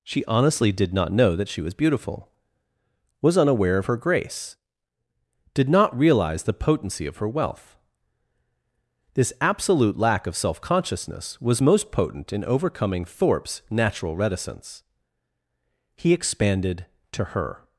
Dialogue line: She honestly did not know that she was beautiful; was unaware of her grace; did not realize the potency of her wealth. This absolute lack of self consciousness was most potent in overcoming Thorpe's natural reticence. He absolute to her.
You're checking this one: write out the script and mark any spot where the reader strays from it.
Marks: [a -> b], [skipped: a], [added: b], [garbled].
She honestly did not know that she was beautiful; was unaware of her grace; did not realize the potency of her wealth. This absolute lack of self consciousness was most potent in overcoming Thorpe's natural reticence. He [absolute -> expanded] to her.